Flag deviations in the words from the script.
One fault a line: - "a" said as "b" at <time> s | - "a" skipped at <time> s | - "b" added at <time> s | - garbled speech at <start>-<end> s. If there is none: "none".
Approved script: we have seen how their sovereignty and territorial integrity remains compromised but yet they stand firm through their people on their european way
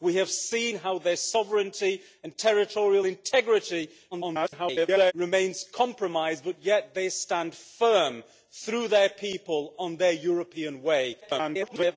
- garbled speech at 4.1-5.1 s
- garbled speech at 11.2-12.0 s